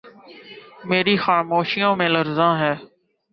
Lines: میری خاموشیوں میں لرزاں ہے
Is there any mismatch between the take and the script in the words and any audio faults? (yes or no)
no